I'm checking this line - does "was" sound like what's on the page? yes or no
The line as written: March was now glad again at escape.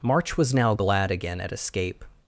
yes